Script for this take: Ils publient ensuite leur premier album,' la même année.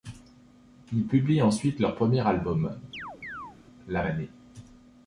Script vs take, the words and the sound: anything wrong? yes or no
yes